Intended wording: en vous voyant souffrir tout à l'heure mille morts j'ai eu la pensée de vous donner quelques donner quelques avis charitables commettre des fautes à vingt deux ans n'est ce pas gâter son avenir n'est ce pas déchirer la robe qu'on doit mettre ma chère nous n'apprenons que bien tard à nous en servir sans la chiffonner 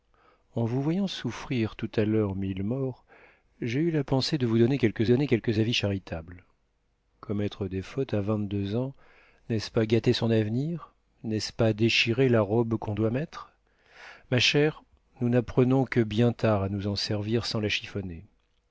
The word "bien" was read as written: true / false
true